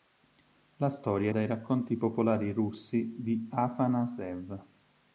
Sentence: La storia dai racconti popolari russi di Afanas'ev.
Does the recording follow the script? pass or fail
pass